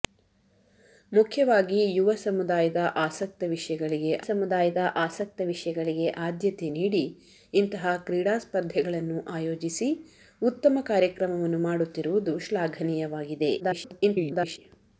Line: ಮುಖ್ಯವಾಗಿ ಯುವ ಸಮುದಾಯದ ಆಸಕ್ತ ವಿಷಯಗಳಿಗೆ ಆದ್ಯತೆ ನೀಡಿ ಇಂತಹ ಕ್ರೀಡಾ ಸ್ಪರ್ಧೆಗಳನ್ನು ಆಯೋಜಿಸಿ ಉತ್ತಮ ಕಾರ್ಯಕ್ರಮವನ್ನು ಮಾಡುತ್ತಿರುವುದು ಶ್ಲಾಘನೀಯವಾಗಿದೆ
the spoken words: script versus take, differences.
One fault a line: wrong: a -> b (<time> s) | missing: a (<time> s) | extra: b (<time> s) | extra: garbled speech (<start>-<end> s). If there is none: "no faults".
extra: ಸಮುದಾಯದ ಆಸಕ್ತ ವಿಷಯಗಳಿಗೆ (4.2 s)
extra: garbled speech (13.6-14.6 s)